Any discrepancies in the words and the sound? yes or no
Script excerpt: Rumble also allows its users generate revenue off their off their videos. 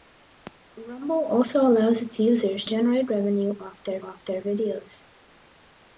no